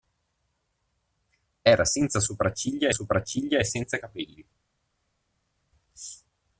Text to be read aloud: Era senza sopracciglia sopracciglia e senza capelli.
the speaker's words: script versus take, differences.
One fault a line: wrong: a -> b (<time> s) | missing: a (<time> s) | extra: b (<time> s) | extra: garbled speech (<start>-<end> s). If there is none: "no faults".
no faults